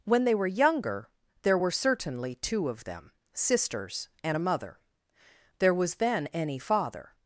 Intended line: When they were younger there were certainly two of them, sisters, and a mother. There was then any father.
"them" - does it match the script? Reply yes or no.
yes